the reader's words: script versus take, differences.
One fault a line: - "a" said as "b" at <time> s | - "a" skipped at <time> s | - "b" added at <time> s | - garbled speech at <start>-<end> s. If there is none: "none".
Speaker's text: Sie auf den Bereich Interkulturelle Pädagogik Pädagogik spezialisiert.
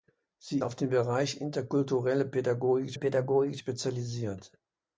none